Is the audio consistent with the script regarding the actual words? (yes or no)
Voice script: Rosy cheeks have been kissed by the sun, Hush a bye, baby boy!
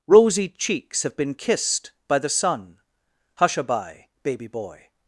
yes